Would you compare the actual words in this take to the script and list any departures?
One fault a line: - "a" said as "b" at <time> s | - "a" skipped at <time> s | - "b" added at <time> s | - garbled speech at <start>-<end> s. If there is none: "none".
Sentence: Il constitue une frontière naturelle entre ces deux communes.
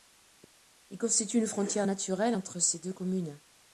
none